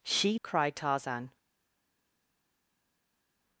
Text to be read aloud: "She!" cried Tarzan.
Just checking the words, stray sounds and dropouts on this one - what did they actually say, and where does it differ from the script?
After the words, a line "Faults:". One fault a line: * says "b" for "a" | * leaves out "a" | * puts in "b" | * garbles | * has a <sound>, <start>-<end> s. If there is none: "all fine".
"She!" cried Tarzan.
Faults:
all fine